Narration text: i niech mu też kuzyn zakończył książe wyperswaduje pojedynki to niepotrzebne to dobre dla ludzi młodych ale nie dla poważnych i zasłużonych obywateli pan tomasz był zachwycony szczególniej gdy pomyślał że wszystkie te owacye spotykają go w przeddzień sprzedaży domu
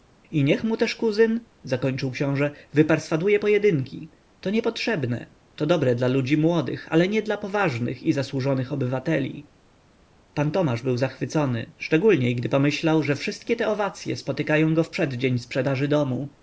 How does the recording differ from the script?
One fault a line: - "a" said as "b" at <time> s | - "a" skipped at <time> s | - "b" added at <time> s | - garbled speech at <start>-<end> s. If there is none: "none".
none